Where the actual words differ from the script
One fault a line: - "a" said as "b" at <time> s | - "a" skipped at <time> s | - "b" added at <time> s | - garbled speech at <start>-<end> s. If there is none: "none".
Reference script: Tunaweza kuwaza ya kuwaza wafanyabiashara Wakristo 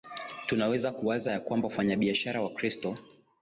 - "kuwaza" said as "kwamba" at 1.4 s